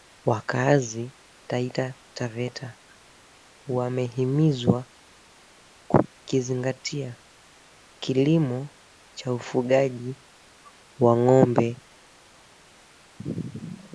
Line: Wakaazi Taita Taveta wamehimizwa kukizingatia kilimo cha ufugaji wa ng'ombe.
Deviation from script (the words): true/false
false